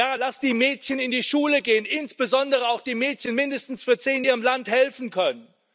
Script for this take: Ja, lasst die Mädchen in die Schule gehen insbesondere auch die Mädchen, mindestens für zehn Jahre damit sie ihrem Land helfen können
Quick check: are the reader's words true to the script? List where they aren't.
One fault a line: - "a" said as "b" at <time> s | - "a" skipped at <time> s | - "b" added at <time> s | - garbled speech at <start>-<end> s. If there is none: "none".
- "Jahre damit sie" skipped at 4.2 s